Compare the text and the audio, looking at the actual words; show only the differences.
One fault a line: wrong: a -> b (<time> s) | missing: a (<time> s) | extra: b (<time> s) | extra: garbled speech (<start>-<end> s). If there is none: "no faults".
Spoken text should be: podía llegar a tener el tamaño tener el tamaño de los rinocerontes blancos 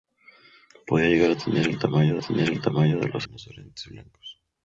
no faults